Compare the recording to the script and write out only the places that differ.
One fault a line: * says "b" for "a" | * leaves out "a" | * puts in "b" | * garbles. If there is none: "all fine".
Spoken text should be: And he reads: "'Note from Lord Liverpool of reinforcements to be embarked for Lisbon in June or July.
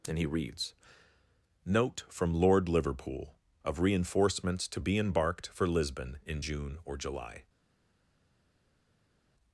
all fine